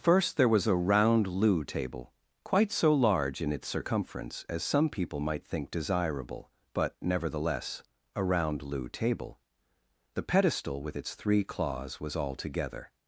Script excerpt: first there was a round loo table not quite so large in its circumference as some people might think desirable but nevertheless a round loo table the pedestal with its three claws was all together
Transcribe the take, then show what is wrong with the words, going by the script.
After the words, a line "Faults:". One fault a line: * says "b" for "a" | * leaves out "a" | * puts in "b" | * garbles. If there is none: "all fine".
first there was a round loo table quite so large in its circumference as some people might think desirable but nevertheless a round loo table the pedestal with its three claws was all together
Faults:
* leaves out "not"